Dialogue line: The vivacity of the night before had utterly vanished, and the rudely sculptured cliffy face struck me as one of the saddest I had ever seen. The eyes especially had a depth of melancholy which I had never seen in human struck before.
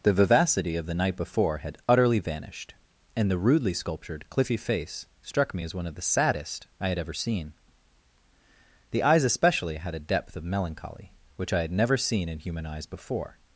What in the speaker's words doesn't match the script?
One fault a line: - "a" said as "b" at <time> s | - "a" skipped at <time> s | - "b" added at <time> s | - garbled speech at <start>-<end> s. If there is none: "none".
- "struck" said as "eyes" at 12.6 s